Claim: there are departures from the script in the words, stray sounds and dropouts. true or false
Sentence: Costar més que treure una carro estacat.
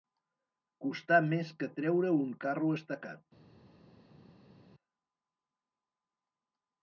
true